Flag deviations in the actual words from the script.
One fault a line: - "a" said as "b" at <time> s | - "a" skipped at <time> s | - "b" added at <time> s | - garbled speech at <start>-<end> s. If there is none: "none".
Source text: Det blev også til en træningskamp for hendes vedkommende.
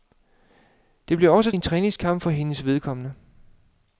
- "til" skipped at 1.5 s